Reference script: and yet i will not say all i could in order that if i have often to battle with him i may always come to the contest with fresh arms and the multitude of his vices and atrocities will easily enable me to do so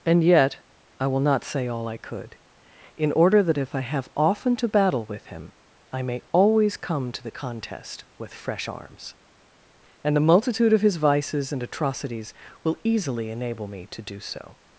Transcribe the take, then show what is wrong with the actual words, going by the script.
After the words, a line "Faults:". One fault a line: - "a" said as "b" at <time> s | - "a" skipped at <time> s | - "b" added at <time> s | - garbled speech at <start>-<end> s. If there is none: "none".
and yet i will not say all i could in order that if i have often to battle with him i may always come to the contest with fresh arms and the multitude of his vices and atrocities will easily enable me to do so
Faults:
none